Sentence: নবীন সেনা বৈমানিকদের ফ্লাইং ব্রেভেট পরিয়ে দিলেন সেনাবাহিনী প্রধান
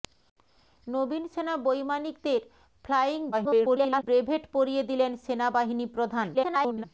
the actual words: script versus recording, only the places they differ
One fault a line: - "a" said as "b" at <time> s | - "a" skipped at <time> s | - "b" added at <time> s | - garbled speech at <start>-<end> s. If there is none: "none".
- garbled speech at 3.3-4.0 s
- garbled speech at 6.3-6.8 s